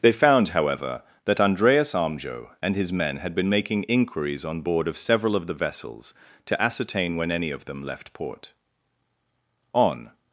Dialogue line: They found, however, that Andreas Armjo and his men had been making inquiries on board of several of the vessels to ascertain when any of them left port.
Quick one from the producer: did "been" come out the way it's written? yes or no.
yes